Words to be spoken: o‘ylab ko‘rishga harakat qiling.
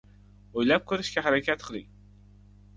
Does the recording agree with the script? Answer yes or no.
yes